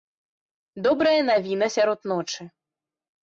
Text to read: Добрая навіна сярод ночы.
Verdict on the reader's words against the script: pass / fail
pass